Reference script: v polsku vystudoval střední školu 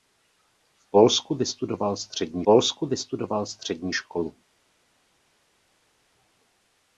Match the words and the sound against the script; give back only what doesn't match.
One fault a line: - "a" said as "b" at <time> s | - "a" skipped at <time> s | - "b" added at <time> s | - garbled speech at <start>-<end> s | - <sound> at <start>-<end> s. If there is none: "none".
- "polsku vystudoval střední" added at 2.4 s